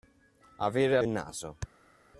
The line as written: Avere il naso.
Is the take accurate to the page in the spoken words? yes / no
yes